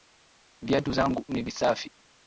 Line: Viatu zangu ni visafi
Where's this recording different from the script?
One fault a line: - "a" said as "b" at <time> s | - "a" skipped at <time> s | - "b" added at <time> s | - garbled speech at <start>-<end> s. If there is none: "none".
none